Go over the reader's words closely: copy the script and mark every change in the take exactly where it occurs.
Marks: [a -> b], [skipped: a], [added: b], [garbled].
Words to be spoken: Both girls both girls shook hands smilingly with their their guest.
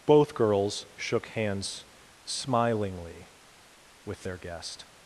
Both girls [skipped: both girls] shook hands smilingly with their [skipped: their] guest.